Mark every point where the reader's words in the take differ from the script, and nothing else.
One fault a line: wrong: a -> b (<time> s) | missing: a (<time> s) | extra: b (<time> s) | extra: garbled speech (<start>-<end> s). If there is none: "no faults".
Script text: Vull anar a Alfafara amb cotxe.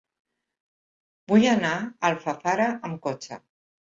no faults